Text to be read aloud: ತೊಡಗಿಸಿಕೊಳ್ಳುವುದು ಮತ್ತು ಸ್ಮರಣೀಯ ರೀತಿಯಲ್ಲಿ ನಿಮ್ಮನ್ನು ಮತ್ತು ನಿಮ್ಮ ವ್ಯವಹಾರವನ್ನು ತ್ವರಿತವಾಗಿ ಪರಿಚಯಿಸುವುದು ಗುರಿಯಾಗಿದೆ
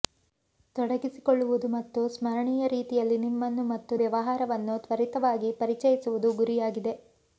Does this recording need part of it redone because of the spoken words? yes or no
yes